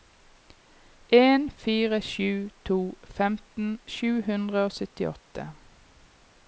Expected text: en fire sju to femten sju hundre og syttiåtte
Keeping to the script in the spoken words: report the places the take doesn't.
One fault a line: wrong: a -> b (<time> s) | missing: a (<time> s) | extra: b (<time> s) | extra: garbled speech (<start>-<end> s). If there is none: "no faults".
no faults